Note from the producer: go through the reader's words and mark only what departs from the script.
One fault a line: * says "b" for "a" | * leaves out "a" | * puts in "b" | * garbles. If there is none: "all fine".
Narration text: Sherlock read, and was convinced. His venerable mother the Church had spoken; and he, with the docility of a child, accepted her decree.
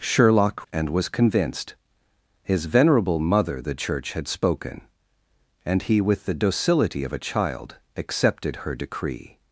* leaves out "read"